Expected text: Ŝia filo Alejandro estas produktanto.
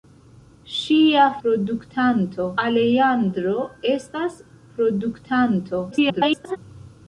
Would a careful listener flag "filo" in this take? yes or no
yes